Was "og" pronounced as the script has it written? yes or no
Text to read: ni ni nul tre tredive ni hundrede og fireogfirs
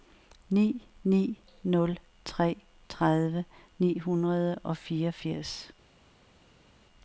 yes